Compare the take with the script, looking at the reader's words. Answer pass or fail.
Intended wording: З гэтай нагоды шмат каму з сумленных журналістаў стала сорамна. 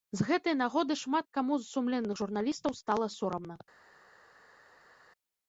pass